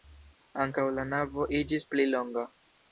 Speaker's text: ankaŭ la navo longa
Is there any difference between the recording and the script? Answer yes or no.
yes